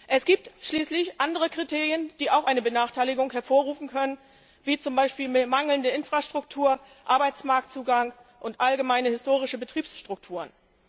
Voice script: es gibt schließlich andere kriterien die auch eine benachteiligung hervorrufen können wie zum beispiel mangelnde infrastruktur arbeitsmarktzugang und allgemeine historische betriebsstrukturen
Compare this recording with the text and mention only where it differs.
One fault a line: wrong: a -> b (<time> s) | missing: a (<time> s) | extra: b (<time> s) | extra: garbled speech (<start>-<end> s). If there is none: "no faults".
no faults